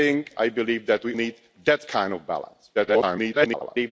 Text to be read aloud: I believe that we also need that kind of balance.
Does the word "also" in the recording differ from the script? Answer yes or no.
yes